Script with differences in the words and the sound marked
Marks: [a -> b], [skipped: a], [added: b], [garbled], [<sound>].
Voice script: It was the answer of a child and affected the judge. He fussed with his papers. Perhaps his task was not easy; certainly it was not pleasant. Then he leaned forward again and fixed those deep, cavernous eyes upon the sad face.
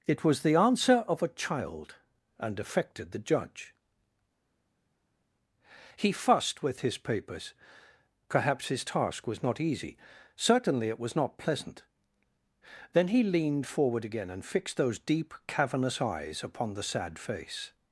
It was the answer of a child and affected the judge. He fussed with his papers. Perhaps his task was not easy; certainly it was not pleasant. Then he leaned forward again and fixed those deep, cavernous eyes upon the sad face.